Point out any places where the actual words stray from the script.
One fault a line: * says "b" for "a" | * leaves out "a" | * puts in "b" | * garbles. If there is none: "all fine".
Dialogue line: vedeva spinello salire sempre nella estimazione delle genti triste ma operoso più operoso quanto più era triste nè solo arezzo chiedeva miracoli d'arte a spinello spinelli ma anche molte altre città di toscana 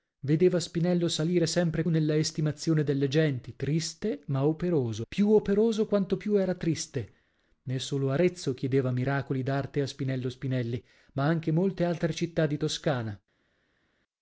all fine